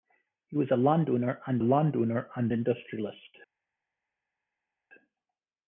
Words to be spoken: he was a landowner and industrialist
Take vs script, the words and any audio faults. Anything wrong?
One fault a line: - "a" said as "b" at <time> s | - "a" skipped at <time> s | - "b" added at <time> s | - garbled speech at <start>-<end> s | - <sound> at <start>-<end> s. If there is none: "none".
- "landowner and" added at 1.6 s